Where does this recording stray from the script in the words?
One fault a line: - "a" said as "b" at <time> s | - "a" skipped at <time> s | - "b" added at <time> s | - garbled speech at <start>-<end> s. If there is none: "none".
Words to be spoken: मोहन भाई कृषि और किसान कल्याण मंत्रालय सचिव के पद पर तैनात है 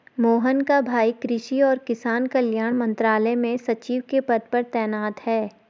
- "का" added at 0.6 s
- "में" added at 3.4 s